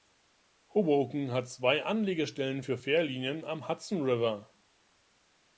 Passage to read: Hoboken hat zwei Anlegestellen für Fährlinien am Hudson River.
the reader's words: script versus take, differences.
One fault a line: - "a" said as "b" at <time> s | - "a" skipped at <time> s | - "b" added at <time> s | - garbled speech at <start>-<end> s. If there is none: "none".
none